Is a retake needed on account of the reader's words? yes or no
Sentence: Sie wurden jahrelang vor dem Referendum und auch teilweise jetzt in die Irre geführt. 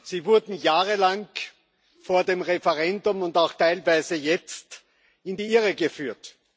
no